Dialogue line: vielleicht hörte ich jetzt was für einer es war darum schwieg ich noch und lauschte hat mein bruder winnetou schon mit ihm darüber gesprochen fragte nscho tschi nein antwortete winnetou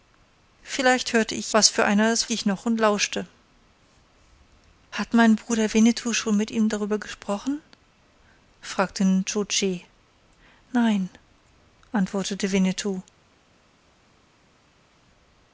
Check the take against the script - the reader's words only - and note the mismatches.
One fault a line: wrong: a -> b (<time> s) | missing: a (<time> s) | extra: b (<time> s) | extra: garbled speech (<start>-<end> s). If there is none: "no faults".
missing: jetzt (1.5 s)
missing: war darum schwieg (2.3 s)